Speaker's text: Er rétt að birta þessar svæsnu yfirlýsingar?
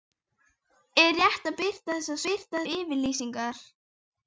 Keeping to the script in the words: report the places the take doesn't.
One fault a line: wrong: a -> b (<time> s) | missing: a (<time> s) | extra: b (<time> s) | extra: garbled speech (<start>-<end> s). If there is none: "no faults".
wrong: svæsnu -> birta (2.3 s)